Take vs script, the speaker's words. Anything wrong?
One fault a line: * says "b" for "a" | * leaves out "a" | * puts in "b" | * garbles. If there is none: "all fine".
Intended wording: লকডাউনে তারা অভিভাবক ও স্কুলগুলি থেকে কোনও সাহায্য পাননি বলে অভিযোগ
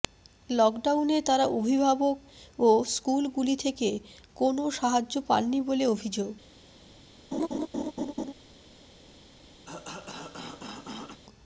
all fine